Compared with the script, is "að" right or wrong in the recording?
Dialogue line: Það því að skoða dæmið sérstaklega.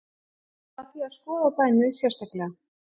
right